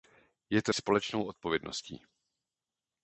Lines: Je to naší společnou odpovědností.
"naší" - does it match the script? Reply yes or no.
no